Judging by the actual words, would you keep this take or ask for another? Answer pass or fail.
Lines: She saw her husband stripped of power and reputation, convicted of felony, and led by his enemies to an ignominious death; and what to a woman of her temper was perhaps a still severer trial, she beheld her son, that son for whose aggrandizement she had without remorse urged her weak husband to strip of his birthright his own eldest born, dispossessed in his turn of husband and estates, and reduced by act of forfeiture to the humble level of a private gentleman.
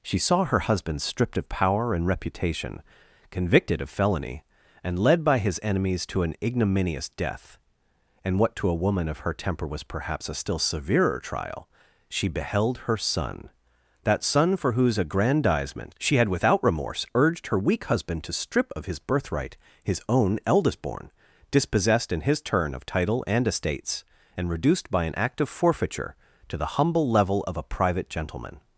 fail